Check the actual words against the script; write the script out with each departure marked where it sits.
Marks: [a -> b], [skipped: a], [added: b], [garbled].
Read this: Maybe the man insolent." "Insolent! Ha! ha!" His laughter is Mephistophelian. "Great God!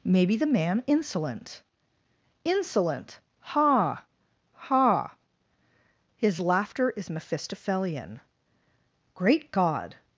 Maybe the man insolent." "Insolent! Ha! ha!" His laughter is Mephistophelian. "Great God!